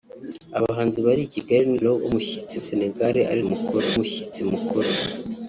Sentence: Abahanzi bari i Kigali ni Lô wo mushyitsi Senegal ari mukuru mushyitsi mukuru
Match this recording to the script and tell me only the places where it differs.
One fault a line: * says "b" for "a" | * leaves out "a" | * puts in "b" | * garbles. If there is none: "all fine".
all fine